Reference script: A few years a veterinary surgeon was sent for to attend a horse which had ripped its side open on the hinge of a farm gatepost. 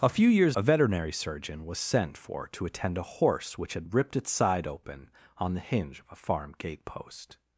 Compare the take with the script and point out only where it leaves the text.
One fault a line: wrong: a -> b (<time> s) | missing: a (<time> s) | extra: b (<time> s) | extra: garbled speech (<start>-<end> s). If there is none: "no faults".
no faults